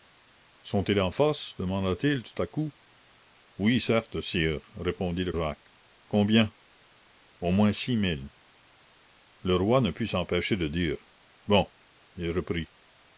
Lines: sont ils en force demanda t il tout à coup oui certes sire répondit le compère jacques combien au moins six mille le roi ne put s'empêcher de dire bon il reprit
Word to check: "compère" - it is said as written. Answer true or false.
false